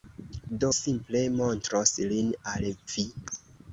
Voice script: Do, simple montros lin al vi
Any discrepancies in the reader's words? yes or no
no